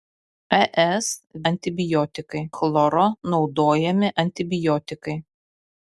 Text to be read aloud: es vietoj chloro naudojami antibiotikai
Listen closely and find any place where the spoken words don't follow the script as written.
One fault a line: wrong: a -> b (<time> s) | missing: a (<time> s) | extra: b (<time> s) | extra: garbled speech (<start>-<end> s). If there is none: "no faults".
wrong: vietoj -> antibiotikai (1.5 s)